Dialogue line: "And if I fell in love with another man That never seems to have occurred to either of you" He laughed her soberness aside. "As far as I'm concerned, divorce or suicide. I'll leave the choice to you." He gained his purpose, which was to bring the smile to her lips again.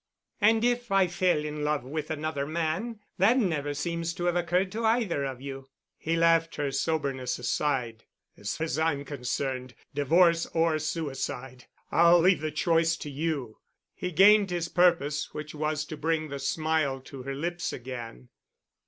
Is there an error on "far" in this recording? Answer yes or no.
yes